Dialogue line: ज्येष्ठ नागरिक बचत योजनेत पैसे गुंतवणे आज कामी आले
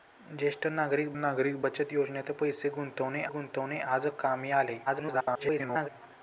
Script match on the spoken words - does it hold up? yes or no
no